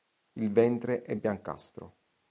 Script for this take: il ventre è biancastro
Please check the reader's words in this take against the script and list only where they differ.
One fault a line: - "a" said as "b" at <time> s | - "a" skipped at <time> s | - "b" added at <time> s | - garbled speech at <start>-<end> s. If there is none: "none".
none